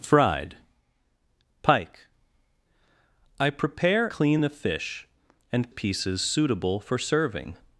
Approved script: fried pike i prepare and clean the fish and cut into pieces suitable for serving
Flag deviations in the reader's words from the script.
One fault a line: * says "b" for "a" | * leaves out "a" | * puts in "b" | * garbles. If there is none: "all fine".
* leaves out "and"
* leaves out "cut into"